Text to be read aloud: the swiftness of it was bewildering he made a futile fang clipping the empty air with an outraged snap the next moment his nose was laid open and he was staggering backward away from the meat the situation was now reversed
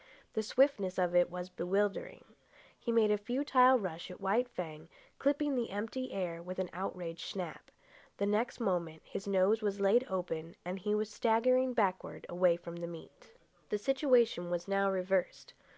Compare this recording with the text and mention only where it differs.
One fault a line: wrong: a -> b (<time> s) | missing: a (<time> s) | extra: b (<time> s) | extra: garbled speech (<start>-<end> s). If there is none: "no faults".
extra: rush at white (3.8 s)